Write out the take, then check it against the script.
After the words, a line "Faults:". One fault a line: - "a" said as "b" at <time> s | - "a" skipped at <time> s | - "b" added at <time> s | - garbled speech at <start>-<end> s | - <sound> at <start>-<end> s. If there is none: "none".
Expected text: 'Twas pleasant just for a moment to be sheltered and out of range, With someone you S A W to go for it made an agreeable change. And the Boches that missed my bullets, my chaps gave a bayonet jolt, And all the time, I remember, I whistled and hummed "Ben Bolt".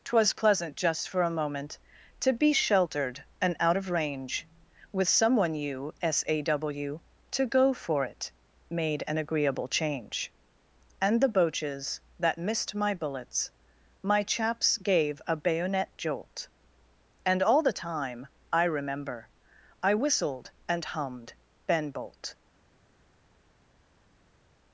'Twas pleasant just for a moment to be sheltered and out of range, With someone you S A W to go for it made an agreeable change. And the Boches that missed my bullets, my chaps gave a bayonet jolt, And all the time, I remember, I whistled and hummed "Ben Bolt".
Faults:
none